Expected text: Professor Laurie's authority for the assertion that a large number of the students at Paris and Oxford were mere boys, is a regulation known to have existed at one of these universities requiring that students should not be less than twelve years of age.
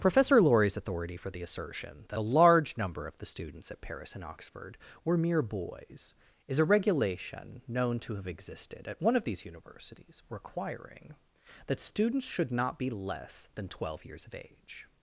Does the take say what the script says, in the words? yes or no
yes